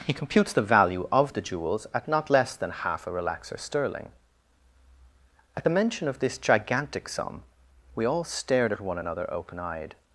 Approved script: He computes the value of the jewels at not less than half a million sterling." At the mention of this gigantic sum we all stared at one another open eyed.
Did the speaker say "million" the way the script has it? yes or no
no